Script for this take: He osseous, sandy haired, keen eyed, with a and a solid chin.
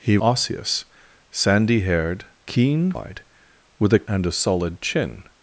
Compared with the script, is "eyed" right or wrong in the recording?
right